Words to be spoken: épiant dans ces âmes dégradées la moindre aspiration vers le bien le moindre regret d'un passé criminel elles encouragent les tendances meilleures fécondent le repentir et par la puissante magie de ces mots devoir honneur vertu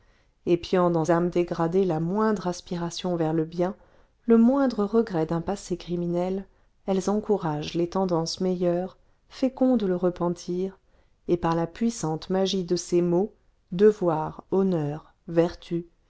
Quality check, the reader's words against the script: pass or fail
fail